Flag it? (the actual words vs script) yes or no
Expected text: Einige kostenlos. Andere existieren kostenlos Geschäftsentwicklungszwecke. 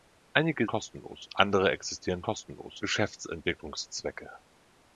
no